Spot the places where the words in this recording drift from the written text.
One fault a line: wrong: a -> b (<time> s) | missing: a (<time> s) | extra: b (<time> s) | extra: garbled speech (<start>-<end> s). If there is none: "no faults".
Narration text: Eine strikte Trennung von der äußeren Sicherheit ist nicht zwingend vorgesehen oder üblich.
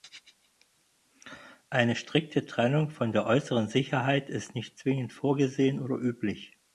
no faults